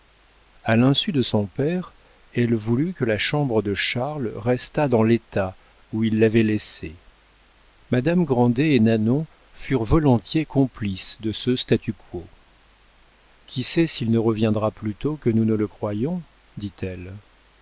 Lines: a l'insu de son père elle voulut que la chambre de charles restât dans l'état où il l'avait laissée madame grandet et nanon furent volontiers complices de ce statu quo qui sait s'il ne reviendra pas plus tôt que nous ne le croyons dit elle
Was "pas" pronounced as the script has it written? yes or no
no